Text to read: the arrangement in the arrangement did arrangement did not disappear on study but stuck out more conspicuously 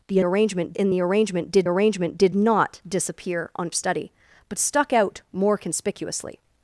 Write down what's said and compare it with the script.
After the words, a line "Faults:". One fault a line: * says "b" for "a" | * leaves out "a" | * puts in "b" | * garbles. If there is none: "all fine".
the arrangement in the arrangement did arrangement did not disappear on study but stuck out more conspicuously
Faults:
all fine